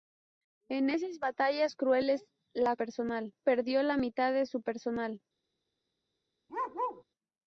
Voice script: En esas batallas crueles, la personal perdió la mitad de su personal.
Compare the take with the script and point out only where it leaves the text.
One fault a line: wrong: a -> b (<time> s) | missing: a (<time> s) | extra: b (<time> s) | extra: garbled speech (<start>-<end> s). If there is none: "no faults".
no faults